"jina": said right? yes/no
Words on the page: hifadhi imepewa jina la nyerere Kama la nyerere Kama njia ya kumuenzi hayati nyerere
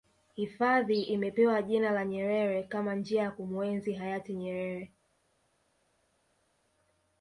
yes